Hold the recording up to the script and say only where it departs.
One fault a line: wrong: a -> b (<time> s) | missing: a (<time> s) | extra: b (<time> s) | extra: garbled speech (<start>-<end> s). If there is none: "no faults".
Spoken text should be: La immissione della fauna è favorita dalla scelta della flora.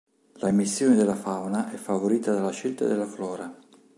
no faults